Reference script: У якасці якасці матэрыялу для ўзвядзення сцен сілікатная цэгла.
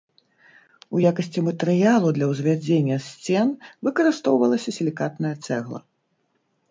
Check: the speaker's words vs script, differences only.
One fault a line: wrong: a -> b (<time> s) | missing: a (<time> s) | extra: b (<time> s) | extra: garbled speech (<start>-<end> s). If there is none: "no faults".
missing: якасці (1.4 s)
extra: выкарыстоўвалася (3.9 s)